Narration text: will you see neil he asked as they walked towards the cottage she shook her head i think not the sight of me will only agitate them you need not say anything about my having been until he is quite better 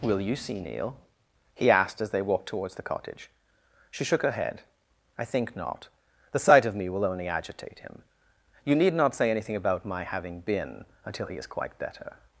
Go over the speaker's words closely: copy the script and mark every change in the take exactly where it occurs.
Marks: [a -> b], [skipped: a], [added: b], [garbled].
will you see neil he asked as they walked towards the cottage she shook her head i think not the sight of me will only agitate [them -> him] you need not say anything about my having been until he is quite better